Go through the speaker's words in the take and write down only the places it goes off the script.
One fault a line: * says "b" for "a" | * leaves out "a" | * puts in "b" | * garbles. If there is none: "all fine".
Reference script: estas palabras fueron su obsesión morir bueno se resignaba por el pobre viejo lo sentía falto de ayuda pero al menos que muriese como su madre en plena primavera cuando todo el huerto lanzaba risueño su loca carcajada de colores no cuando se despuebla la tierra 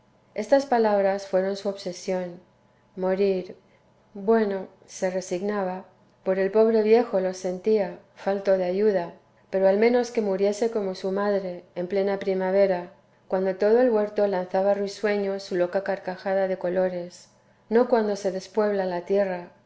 all fine